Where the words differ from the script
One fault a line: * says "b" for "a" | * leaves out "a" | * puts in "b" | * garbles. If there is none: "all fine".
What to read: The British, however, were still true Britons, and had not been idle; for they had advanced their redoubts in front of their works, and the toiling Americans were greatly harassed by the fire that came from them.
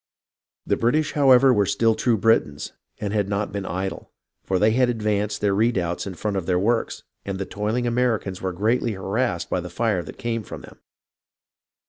all fine